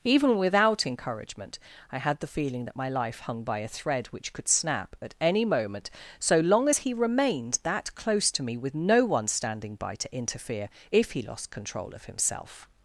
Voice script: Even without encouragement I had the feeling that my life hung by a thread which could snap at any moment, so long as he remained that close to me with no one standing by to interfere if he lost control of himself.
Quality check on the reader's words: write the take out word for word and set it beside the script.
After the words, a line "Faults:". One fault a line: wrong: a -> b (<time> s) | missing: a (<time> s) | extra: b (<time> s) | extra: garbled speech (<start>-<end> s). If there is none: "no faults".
Even without encouragement I had the feeling that my life hung by a thread which could snap at any moment, so long as he remained that close to me with no one standing by to interfere if he lost control of himself.
Faults:
no faults